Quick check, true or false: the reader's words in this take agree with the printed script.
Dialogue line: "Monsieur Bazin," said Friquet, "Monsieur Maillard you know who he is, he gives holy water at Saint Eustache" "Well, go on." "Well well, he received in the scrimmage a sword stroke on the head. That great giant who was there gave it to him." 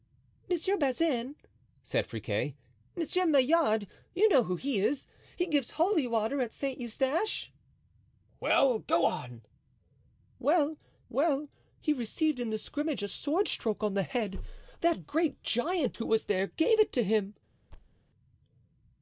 true